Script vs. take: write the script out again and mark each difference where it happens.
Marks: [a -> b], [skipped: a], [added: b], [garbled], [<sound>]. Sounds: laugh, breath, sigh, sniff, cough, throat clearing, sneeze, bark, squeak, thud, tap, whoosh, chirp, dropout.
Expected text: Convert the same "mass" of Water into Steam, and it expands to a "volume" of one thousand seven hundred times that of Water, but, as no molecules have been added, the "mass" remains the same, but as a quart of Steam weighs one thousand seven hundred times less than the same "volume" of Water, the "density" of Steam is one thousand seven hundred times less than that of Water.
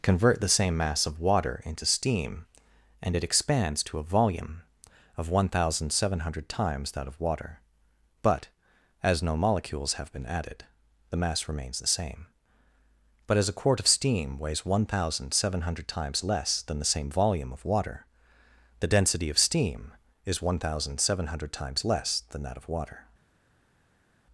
Convert the same "mass" of Water into Steam, and it expands to a "volume" of one thousand seven hundred times that of Water, but, as no molecules have been added, the "mass" remains the same, but as a quart of Steam weighs one thousand seven hundred times less than the same "volume" of Water, the "density" of Steam is one thousand seven hundred times less than that of Water.